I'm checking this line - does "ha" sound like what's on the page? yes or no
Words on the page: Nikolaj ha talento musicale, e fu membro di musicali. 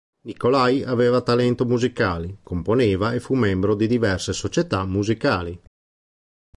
no